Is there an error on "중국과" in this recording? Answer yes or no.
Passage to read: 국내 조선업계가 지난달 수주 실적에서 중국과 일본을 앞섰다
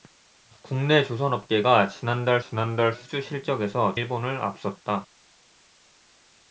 yes